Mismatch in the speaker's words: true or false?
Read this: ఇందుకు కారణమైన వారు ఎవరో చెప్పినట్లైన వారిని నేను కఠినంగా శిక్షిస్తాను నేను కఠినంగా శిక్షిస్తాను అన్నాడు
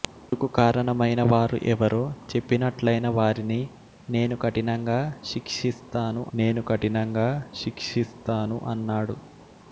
false